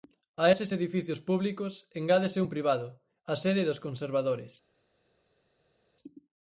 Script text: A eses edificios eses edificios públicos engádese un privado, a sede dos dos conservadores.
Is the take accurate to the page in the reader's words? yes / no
no